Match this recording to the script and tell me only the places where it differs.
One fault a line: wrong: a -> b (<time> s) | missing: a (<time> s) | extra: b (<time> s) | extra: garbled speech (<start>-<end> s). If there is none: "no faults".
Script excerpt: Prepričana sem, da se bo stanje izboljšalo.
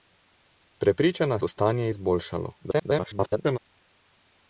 missing: sem da se (1.4 s)
extra: garbled speech (2.6-3.6 s)